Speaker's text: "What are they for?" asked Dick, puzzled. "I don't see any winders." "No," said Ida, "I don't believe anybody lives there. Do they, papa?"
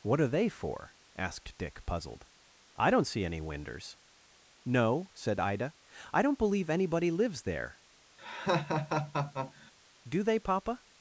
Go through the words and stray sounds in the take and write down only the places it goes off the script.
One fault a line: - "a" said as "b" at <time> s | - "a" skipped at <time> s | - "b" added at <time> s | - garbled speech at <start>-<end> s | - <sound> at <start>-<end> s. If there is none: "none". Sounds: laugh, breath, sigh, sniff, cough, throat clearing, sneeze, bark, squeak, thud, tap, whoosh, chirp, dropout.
- laugh at 8.2-9.7 s